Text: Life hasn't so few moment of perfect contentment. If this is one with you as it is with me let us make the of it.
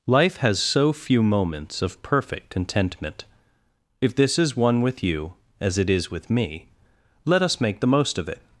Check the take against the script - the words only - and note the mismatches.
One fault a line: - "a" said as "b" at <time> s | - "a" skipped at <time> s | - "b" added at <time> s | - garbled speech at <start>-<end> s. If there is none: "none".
- "hasn't" said as "has" at 0.4 s
- "moment" said as "moments" at 1.2 s
- "most" added at 7.9 s